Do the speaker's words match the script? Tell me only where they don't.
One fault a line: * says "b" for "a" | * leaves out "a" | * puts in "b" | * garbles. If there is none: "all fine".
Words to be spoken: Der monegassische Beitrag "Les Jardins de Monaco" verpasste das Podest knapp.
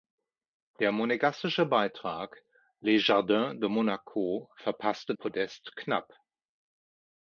* leaves out "das"